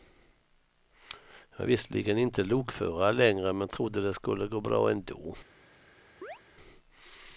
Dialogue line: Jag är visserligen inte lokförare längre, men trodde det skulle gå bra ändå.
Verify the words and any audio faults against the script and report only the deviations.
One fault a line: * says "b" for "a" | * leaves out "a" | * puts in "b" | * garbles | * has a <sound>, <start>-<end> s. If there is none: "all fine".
* has a chirp, 6.2-6.4 s